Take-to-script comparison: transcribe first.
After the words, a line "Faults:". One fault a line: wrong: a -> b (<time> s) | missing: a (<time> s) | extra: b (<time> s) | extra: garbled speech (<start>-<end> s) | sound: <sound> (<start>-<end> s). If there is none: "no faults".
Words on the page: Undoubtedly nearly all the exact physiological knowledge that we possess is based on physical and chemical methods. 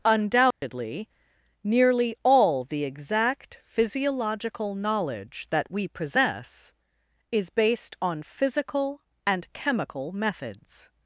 Undoubtedly nearly all the exact physiological knowledge that we possess is based on physical and chemical methods.
Faults:
sound: dropout (0.5-0.6 s)